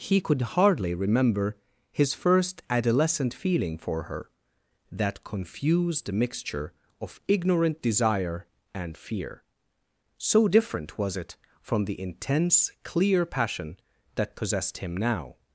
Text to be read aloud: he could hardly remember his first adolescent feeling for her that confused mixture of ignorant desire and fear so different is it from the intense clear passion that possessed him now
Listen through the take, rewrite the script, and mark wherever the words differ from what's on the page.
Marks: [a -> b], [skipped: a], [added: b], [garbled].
he could hardly remember his first adolescent feeling for her that confused mixture of ignorant desire and fear so different [is -> was] it from the intense clear passion that possessed him now